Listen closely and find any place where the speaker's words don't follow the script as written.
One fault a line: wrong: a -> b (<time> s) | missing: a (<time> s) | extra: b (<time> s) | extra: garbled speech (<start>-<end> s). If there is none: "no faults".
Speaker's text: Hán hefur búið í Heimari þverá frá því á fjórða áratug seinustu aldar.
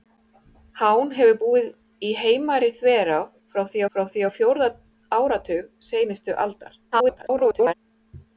extra: frá því (3.9 s)
extra: garbled speech (6.9-7.7 s)